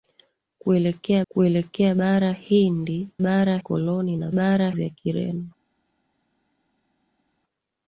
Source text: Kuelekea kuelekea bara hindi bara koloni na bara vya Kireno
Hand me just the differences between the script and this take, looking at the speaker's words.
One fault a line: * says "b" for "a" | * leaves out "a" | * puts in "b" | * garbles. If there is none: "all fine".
all fine